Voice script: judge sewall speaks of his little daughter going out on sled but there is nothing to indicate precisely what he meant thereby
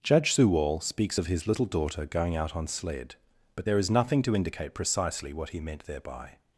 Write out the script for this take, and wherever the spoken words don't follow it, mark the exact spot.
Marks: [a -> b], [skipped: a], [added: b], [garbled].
judge sewall speaks of his little daughter going out on sled but there is nothing to indicate precisely what he meant thereby